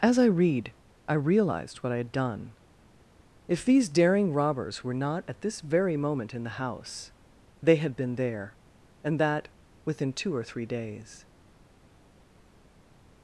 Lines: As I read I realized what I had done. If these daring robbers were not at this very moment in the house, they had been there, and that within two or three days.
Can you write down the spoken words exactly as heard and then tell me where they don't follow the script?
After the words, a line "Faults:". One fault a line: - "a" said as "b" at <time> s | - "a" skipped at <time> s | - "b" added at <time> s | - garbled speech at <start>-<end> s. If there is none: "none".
As I read I realized what I had done. If these daring robbers were not at this very moment in the house, they had been there, and that within two or three days.
Faults:
none